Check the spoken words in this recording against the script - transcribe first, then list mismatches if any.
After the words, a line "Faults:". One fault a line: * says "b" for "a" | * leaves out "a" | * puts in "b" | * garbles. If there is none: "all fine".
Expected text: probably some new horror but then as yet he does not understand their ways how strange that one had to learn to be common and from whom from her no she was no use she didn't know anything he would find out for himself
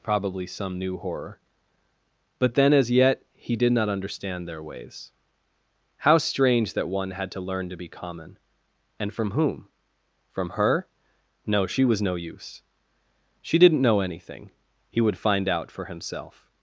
probably some new horror but then as yet he did not understand their ways how strange that one had to learn to be common and from whom from her no she was no use she didn't know anything he would find out for himself
Faults:
* says "did" for "does"